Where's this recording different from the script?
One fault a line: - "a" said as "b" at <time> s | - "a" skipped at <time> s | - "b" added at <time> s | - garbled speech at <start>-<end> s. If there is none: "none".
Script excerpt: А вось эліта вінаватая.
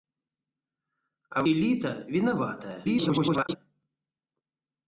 - "вось" skipped at 1.4 s
- garbled speech at 2.8-3.6 s